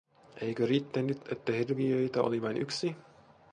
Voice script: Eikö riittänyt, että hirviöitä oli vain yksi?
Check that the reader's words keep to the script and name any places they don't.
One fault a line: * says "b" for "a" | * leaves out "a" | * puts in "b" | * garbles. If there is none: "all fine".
all fine